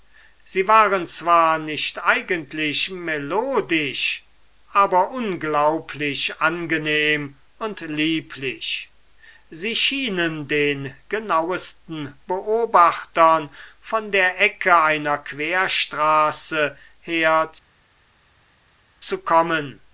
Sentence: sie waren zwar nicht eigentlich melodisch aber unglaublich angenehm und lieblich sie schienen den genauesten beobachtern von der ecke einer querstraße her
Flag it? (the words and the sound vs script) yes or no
no